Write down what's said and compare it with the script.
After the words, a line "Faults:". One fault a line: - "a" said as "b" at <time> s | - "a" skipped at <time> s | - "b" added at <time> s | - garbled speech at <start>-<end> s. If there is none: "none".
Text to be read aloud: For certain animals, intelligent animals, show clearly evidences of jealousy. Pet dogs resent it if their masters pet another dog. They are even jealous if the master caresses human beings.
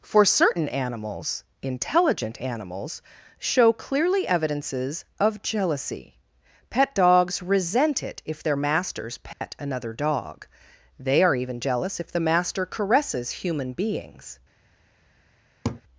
For certain animals, intelligent animals, show clearly evidences of jealousy. Pet dogs resent it if their masters pet another dog. They are even jealous if the master caresses human beings.
Faults:
none